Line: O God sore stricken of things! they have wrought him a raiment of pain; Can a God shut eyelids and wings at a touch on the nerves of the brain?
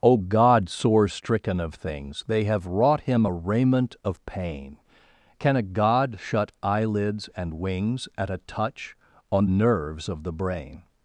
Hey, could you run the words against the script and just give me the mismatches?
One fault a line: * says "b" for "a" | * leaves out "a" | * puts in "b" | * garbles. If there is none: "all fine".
* leaves out "the"